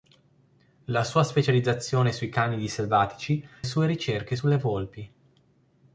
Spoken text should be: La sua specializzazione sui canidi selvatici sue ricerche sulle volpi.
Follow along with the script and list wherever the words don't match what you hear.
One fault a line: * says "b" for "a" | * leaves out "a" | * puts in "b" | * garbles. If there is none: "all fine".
all fine